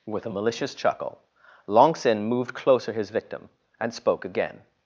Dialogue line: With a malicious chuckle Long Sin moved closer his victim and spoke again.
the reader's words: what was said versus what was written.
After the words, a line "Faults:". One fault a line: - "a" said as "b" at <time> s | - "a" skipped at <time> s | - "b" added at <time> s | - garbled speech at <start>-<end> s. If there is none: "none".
With a malicious chuckle Long Sin moved closer his victim and spoke again.
Faults:
none